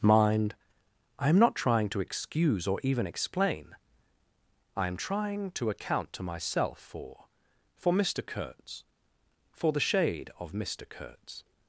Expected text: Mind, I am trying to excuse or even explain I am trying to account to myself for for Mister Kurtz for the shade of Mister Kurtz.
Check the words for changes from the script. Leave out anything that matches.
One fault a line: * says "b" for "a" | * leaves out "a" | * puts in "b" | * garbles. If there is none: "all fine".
* puts in "not"